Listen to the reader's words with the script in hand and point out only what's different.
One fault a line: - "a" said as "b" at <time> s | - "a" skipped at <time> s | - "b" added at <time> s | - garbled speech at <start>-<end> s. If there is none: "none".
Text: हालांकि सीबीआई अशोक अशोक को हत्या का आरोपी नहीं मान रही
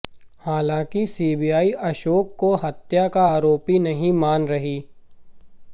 - "अशोक" skipped at 2.4 s